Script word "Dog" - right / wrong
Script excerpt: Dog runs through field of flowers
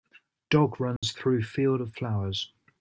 right